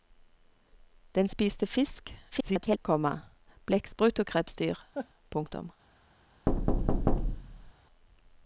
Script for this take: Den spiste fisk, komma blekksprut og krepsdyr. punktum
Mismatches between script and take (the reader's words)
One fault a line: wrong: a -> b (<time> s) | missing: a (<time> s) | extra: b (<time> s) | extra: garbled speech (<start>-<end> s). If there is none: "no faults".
extra: garbled speech (2.3-2.8 s)